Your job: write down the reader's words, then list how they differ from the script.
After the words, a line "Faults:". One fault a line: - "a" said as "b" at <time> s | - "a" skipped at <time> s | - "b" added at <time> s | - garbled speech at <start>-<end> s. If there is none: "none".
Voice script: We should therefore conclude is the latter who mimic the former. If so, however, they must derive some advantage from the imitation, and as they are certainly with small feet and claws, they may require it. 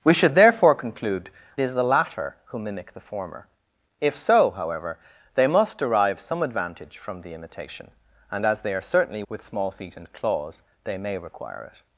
We should therefore conclude is the latter who mimic the former. If so, however, they must derive some advantage from the imitation, and as they are certainly with small feet and claws, they may require it.
Faults:
none